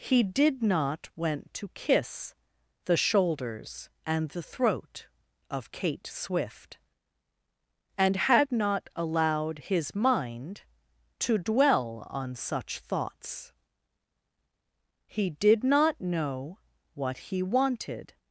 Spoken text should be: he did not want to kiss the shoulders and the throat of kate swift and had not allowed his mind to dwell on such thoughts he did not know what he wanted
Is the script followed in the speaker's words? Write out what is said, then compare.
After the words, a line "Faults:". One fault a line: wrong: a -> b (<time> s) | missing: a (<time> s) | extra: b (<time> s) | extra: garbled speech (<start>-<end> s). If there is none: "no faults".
he did not went to kiss the shoulders and the throat of kate swift and had not allowed his mind to dwell on such thoughts he did not know what he wanted
Faults:
wrong: want -> went (1.1 s)